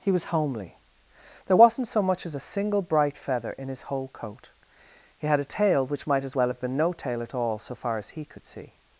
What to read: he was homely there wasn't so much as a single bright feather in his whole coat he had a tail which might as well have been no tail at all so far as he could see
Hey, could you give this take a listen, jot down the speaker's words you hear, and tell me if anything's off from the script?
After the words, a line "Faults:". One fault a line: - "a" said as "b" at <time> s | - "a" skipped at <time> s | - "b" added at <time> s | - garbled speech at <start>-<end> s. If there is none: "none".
he was homely there wasn't so much as a single bright feather in his whole coat he had a tail which might as well have been no tail at all so far as he could see
Faults:
none